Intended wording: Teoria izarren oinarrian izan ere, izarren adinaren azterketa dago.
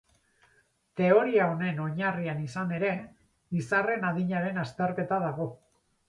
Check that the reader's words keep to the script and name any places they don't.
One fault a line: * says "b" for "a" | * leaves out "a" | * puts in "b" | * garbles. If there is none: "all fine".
* says "honen" for "izarren"